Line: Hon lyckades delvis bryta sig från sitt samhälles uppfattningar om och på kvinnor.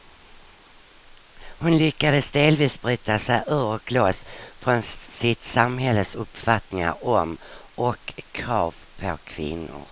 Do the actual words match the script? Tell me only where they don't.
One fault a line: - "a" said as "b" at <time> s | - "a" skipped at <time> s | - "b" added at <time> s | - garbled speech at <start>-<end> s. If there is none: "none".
- "ur och loss" added at 3.5 s
- "krav" added at 8.3 s